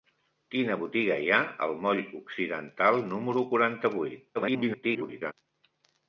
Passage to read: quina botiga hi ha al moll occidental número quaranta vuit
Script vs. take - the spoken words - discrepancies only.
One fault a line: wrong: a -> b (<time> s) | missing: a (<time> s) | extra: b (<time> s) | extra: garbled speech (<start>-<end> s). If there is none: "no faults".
extra: garbled speech (4.3-5.3 s)